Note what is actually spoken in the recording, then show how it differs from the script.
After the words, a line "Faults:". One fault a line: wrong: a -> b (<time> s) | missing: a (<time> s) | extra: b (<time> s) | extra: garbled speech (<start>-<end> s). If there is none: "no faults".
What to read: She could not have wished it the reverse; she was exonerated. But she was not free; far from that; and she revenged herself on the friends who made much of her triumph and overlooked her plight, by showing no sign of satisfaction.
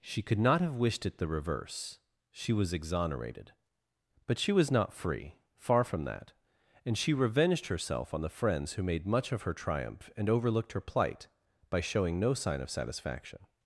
She could not have wished it the reverse; she was exonerated. But she was not free; far from that; and she revenged herself on the friends who made much of her triumph and overlooked her plight, by showing no sign of satisfaction.
Faults:
no faults